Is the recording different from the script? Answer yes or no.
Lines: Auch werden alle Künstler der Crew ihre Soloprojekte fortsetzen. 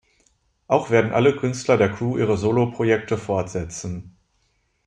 no